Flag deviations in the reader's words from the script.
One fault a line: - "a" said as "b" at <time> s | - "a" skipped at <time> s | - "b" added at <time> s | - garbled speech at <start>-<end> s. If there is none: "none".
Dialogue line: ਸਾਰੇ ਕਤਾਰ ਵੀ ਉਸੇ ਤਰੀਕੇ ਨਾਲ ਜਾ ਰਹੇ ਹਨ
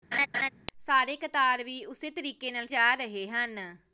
none